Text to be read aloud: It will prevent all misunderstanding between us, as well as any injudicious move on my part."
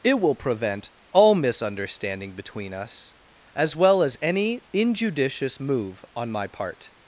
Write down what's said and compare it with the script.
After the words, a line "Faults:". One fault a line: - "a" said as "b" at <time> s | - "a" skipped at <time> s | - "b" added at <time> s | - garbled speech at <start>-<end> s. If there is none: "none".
It will prevent all misunderstanding between us, as well as any injudicious move on my part."
Faults:
none